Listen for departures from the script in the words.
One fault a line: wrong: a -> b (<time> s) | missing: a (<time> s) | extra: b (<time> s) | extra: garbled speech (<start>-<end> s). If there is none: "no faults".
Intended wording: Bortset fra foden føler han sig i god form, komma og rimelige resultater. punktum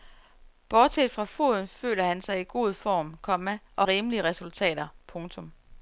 no faults